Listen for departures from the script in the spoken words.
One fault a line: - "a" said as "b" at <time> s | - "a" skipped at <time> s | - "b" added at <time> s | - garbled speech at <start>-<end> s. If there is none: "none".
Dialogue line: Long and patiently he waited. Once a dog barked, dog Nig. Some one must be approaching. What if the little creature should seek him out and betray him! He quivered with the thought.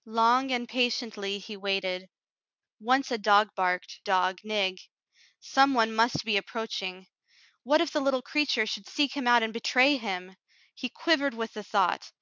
none